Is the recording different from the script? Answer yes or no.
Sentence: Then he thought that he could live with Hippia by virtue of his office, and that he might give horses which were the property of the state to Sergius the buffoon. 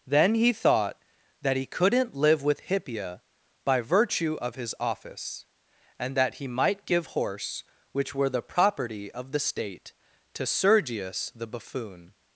yes